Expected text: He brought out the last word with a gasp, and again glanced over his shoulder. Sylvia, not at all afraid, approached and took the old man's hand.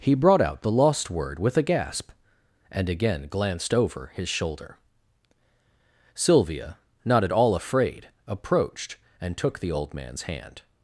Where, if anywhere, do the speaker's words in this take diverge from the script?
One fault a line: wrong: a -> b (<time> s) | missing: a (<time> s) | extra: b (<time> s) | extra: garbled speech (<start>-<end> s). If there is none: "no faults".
wrong: last -> lost (0.7 s)